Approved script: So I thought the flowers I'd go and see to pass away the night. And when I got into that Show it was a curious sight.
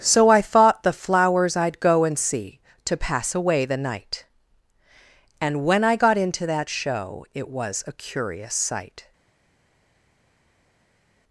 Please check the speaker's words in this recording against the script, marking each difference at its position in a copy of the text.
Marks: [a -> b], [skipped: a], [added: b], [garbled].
So I thought the flowers I'd go and see to pass away the night. And when I got into that Show it was a curious sight.